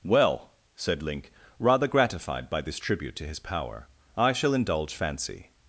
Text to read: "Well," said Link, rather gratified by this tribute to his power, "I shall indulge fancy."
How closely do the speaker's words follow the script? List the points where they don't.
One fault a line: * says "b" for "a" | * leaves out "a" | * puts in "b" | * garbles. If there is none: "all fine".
all fine